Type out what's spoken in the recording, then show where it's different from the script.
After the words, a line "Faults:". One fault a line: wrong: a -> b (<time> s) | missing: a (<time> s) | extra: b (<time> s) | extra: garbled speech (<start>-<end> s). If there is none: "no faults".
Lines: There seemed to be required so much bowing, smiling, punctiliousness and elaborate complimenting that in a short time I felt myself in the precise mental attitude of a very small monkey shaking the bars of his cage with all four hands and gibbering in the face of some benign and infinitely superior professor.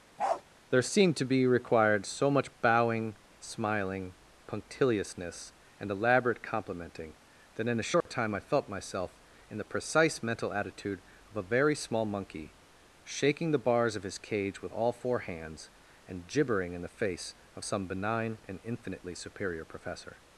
There seemed to be required so much bowing, smiling, punctiliousness and elaborate complimenting that in a short time I felt myself in the precise mental attitude of a very small monkey shaking the bars of his cage with all four hands and gibbering in the face of some benign and infinitely superior professor.
Faults:
no faults